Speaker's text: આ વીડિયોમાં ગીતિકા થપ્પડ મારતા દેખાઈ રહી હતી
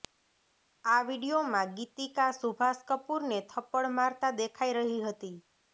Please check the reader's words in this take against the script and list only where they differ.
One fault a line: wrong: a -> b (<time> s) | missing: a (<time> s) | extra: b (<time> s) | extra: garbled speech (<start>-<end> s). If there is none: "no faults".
extra: સુભાષ કપૂરને (2.4 s)